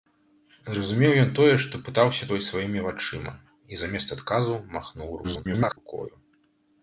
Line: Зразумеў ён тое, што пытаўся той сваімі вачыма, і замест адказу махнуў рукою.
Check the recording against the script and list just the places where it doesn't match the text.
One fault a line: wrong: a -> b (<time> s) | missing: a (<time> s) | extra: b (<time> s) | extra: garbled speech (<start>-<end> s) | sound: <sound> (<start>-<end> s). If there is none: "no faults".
extra: garbled speech (5.2-5.8 s)